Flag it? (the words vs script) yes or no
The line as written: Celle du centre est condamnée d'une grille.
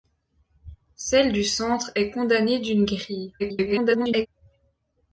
yes